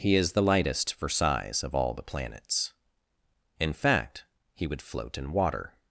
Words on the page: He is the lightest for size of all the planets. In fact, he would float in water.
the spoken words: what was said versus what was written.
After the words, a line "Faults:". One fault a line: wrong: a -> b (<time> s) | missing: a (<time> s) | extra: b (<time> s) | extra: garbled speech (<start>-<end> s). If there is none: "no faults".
He is the lightest for size of all the planets. In fact, he would float in water.
Faults:
no faults